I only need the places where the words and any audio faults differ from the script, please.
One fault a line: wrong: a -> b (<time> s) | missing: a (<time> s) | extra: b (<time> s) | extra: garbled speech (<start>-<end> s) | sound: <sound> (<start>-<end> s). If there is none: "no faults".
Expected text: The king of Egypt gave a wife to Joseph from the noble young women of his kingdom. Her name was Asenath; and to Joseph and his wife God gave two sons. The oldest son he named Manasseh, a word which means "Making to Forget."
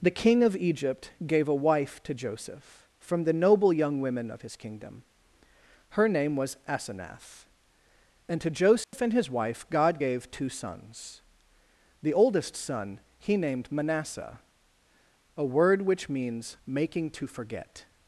sound: dropout (8.8-8.9 s)